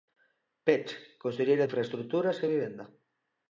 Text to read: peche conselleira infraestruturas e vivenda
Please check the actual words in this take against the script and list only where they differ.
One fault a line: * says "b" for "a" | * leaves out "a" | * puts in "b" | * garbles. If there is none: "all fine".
all fine